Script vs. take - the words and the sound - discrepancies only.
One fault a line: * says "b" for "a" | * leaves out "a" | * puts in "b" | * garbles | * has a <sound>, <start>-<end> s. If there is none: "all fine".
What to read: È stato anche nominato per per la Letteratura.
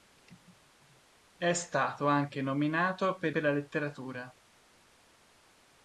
all fine